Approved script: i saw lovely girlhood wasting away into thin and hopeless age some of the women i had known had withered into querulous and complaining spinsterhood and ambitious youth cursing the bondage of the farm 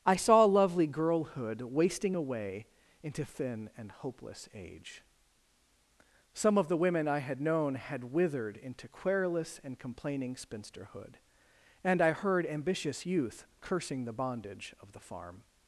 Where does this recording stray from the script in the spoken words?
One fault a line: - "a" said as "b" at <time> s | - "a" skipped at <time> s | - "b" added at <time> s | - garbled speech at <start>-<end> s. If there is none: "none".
- "i heard" added at 12.0 s